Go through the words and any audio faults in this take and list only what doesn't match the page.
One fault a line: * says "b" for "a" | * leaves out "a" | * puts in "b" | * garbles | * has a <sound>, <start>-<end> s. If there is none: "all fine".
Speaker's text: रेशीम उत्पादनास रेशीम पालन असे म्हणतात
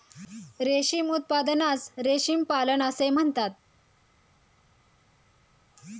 all fine